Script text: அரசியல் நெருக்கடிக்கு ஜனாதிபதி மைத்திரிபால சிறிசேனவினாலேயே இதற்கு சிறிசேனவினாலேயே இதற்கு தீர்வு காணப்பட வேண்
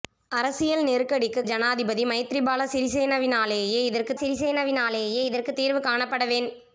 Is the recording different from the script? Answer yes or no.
no